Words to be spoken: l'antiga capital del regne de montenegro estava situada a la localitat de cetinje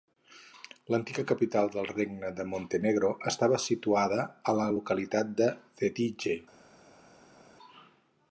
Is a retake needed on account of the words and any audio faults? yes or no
no